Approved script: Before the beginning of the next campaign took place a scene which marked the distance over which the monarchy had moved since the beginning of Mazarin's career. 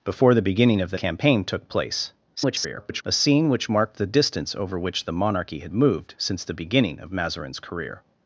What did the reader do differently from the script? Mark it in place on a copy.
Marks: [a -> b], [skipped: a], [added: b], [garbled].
Before the beginning of the [skipped: next] campaign took place [garbled] a scene which marked the distance over which the monarchy had moved since the beginning of Mazarin's career.